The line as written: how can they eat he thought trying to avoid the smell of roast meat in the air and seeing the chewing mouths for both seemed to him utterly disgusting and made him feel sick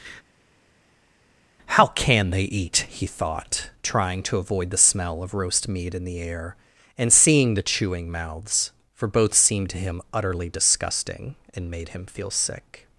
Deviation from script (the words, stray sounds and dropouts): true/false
false